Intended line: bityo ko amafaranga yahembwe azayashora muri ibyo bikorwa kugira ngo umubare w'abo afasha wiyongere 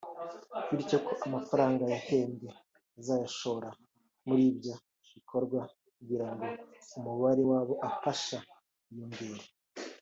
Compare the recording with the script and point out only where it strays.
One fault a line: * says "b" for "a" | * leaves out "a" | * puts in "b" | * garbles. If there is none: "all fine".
all fine